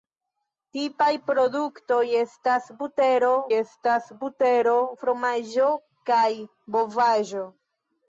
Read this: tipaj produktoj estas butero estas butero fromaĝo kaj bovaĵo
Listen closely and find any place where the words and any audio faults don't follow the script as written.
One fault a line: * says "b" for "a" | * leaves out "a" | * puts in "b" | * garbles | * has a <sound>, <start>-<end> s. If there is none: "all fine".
all fine